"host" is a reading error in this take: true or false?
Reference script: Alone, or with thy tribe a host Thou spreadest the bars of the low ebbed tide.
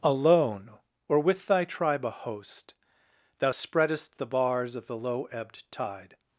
false